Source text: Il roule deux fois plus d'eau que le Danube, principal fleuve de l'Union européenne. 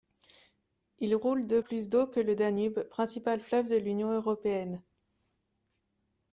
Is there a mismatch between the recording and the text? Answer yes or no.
yes